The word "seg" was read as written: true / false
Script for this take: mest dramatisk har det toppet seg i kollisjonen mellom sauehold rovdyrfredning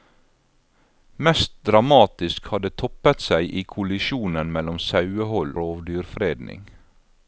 true